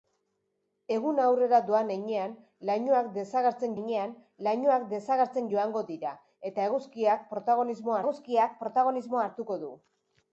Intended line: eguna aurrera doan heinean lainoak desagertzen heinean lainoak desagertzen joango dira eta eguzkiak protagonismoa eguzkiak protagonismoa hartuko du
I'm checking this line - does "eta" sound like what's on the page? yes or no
yes